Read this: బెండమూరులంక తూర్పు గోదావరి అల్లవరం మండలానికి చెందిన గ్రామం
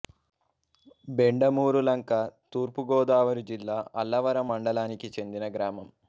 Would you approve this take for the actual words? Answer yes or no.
no